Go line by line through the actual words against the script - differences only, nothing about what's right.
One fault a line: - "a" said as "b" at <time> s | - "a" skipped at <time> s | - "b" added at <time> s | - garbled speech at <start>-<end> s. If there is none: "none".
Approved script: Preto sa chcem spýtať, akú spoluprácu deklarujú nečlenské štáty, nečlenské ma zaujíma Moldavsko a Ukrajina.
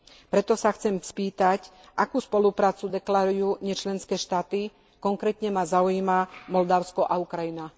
- "nečlenské" said as "konkrétne" at 5.0 s